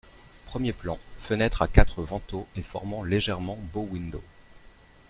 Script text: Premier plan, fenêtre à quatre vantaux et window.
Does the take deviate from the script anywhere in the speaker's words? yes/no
yes